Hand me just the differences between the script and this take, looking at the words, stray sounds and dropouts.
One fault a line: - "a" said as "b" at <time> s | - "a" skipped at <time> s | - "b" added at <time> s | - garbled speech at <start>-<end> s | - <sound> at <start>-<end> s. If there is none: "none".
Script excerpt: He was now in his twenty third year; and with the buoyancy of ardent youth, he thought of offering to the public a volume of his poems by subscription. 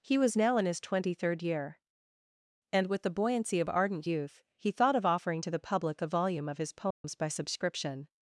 - dropout at 6.9-7.0 s